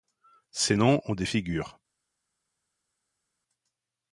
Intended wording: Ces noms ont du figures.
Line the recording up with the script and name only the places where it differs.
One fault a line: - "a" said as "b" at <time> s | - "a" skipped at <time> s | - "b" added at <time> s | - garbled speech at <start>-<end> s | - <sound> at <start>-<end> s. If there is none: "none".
- "du" said as "des" at 1.1 s